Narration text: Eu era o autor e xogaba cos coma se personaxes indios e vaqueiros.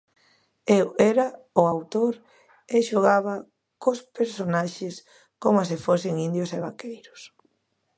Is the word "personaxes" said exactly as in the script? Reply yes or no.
no